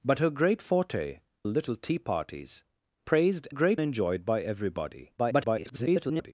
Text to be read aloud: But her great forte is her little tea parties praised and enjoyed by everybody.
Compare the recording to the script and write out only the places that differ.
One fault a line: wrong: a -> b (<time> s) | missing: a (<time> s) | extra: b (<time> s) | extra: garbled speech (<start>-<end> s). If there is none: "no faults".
missing: is her (1.2 s)
wrong: and -> great (3.5 s)
extra: garbled speech (5.2-6.3 s)